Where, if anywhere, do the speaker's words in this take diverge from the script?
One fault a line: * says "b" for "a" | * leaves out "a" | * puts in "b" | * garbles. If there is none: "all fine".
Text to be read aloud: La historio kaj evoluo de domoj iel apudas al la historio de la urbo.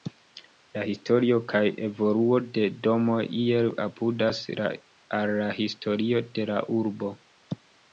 all fine